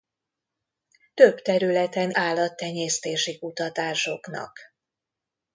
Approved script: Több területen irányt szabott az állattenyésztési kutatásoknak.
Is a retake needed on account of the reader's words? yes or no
yes